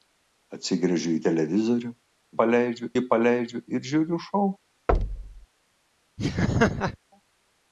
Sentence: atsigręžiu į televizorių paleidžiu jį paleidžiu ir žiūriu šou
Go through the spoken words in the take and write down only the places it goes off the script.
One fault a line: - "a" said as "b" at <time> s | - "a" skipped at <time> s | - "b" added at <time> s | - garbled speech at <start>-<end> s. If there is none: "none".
none